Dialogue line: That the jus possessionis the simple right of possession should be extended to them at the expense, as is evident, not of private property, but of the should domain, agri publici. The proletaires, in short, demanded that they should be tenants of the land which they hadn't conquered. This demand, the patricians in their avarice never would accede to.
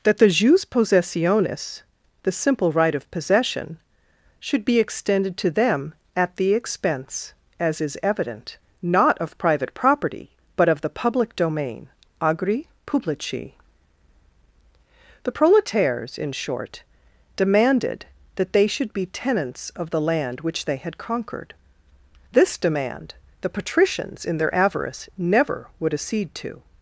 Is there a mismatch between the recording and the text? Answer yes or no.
yes